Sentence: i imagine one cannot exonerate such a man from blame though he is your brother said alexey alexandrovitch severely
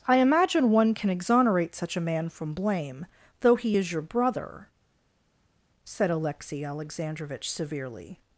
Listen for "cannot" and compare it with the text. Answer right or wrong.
wrong